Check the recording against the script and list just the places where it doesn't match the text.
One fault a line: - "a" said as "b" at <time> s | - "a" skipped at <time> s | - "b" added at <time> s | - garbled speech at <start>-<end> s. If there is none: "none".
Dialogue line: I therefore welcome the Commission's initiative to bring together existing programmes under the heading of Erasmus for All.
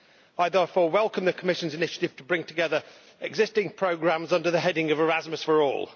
none